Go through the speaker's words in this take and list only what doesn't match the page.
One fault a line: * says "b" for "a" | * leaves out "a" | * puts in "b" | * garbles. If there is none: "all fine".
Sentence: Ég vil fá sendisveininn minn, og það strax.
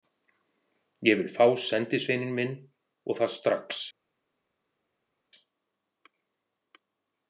all fine